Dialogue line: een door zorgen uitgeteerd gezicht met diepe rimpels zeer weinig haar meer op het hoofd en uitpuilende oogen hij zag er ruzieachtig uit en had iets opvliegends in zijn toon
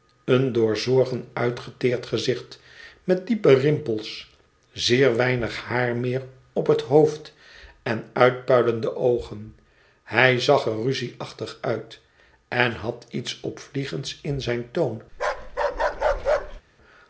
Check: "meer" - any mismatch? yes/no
no